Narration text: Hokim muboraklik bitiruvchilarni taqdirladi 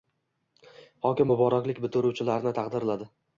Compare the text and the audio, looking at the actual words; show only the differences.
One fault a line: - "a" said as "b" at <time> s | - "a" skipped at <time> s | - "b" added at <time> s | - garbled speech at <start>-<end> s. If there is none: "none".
none